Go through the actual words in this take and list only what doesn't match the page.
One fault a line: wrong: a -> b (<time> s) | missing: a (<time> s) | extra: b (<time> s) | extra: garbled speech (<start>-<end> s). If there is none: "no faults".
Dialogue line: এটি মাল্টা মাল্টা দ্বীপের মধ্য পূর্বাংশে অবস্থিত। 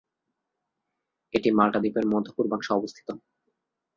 missing: মাল্টা (1.8 s)